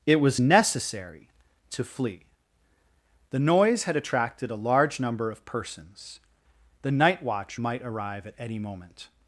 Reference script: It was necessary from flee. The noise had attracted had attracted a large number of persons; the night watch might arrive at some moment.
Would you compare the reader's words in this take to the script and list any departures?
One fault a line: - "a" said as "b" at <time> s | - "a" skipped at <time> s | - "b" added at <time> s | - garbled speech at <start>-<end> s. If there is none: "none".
- "from" said as "to" at 1.7 s
- "had attracted" skipped at 4.5 s
- "some" said as "any" at 8.4 s